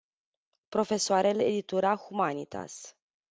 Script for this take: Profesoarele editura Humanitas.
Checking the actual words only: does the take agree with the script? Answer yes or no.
yes